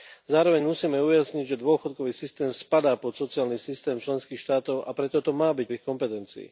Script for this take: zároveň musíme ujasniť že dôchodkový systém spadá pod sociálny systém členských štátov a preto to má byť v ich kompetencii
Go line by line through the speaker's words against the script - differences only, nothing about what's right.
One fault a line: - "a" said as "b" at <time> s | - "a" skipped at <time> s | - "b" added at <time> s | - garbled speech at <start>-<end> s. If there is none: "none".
none